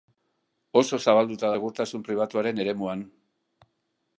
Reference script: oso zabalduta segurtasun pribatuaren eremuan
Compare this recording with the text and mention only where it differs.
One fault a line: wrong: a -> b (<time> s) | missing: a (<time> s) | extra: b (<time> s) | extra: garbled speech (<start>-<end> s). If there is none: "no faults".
no faults